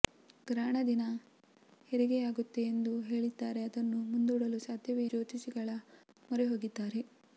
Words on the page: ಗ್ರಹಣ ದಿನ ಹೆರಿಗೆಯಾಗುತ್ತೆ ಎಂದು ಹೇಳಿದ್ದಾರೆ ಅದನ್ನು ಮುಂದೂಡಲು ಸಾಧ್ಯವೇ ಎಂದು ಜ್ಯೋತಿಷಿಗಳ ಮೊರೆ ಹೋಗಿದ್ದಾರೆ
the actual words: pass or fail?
fail